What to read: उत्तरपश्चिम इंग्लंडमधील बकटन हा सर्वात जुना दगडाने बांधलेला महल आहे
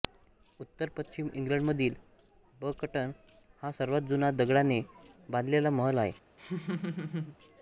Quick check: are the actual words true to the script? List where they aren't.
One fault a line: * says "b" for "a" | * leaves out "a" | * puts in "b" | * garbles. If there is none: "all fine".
all fine